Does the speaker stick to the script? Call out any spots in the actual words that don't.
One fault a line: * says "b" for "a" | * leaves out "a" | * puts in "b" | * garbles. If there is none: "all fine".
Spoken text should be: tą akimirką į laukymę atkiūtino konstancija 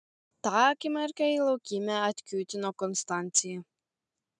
all fine